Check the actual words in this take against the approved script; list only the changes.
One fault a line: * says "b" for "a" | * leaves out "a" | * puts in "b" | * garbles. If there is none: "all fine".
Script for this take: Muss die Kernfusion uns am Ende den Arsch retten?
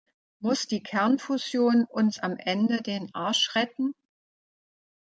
all fine